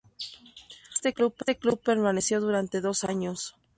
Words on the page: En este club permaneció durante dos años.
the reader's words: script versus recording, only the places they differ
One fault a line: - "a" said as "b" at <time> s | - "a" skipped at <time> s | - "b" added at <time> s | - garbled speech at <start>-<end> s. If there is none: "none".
none